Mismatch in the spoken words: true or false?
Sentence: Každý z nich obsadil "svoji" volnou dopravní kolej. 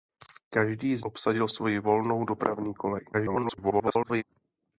true